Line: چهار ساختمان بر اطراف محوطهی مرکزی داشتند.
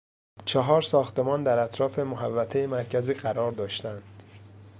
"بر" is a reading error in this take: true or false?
true